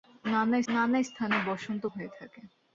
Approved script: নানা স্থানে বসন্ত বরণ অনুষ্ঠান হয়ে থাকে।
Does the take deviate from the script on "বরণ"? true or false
true